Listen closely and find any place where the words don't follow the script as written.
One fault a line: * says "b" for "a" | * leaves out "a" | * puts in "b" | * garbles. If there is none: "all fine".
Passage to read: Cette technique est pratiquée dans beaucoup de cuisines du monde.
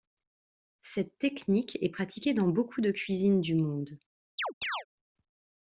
all fine